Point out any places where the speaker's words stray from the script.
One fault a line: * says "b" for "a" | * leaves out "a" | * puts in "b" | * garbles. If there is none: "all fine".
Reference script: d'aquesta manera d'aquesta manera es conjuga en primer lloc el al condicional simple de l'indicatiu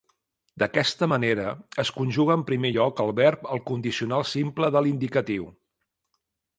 * leaves out "d'aquesta manera"
* puts in "verb"